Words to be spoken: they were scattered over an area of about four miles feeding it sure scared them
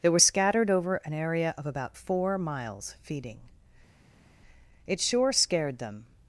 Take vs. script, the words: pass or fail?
pass